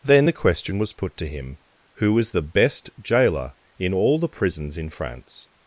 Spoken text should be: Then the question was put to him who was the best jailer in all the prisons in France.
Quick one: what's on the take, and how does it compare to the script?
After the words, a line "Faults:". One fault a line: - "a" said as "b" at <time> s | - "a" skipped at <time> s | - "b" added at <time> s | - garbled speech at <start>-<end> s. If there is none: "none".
Then the question was put to him who was the best jailer in all the prisons in France.
Faults:
none